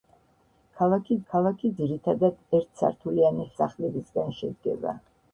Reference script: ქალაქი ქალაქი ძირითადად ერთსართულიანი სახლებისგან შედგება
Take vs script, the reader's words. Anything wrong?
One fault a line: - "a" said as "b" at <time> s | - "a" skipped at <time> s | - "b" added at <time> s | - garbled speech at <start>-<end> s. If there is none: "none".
none